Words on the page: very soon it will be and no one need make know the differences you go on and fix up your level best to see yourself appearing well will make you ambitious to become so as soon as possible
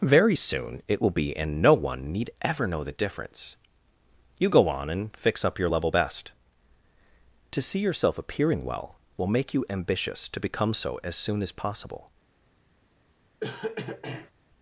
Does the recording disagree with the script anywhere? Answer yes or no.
yes